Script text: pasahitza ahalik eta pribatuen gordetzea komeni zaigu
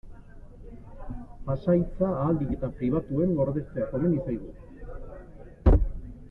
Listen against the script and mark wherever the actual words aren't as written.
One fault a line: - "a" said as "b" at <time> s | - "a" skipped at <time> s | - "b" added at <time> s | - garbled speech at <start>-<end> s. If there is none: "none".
none